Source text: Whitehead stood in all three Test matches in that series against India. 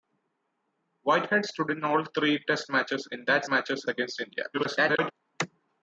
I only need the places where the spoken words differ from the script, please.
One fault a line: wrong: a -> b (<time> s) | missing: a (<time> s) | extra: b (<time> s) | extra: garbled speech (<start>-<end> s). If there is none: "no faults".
wrong: series -> matches (3.5 s)
extra: garbled speech (4.5-5.1 s)